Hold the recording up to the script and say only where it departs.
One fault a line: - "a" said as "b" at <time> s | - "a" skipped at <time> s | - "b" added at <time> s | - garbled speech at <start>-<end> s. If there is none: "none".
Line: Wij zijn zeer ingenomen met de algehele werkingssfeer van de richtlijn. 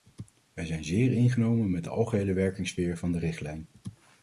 none